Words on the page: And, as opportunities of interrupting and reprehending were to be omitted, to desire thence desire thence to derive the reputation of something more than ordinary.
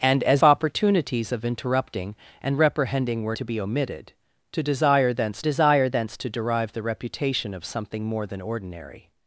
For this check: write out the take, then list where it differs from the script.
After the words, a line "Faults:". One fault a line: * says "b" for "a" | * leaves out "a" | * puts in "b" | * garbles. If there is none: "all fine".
And, as opportunities of interrupting and reprehending were to be omitted, to desire thence desire thence to derive the reputation of something more than ordinary.
Faults:
all fine